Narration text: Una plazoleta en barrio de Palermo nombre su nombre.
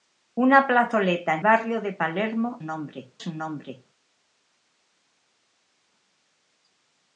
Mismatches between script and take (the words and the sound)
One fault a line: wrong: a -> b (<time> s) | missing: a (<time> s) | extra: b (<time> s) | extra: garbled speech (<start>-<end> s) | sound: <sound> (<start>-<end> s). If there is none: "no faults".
no faults